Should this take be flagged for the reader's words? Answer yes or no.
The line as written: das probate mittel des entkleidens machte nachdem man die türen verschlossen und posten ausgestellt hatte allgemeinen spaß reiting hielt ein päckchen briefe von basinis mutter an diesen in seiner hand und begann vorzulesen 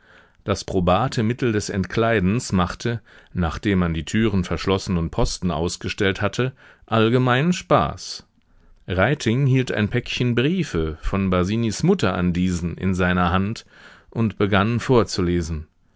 no